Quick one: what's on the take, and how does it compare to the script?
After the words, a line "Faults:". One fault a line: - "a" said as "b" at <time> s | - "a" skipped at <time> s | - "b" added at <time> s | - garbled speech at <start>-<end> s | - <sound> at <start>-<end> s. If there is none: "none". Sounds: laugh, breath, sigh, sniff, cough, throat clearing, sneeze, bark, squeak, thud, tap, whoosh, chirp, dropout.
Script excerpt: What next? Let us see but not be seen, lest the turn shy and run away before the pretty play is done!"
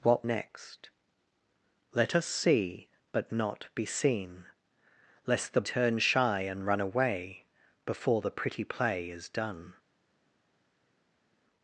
What next? Let us see but not be seen, lest the turn shy and run away before the pretty play is done!"
Faults:
none